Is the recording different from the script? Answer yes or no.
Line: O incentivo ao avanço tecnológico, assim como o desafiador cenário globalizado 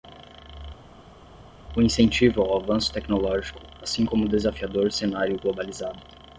no